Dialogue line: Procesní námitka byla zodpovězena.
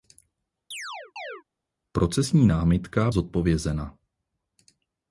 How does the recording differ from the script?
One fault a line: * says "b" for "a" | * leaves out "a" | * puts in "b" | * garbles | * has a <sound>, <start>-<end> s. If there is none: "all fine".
* has a chirp, 0.7-1.4 s
* leaves out "byla"